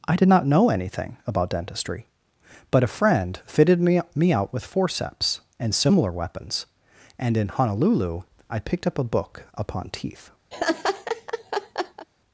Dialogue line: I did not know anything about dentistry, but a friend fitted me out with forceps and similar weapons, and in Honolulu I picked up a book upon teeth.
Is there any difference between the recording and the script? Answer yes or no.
yes